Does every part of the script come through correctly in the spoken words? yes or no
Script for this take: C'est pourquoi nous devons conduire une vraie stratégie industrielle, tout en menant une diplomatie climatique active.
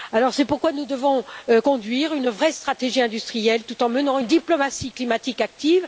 yes